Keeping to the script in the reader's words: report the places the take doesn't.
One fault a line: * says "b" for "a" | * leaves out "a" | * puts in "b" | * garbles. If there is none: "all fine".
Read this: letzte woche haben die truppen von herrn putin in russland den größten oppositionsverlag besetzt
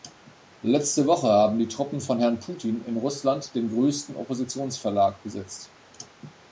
all fine